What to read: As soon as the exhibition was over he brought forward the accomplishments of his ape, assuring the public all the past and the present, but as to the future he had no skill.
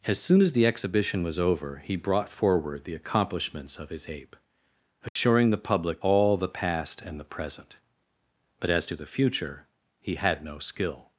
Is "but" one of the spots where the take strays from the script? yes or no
no